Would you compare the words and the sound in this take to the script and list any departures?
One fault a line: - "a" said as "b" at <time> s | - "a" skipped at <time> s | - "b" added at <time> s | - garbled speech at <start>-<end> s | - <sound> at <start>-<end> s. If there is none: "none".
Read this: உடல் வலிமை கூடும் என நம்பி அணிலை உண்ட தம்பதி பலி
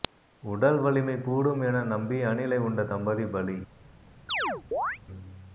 - chirp at 4.3-5.0 s